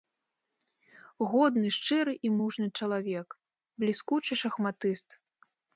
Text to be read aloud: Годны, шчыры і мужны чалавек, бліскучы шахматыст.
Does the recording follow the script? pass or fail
pass